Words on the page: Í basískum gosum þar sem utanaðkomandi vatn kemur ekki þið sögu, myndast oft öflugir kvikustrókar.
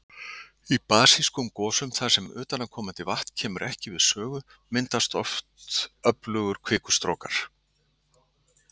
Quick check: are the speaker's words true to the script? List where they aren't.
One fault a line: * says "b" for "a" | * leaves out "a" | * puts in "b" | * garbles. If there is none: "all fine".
* says "við" for "þið"